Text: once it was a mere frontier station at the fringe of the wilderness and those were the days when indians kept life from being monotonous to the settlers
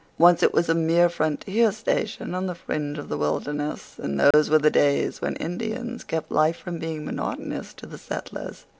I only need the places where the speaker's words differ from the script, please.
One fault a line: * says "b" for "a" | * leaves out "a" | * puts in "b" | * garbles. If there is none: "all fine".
* says "on" for "at"